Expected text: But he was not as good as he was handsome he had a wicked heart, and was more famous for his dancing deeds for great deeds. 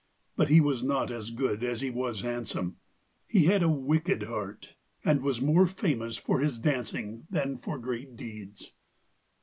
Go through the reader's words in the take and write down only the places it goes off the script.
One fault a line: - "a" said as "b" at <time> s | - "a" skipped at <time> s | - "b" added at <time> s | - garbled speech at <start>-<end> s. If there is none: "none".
- "deeds" said as "than" at 7.3 s